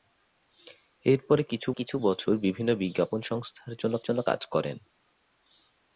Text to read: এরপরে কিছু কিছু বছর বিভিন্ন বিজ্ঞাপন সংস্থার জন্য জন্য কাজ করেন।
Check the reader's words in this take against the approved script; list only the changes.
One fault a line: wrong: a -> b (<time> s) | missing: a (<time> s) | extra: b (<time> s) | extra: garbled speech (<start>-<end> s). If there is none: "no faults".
no faults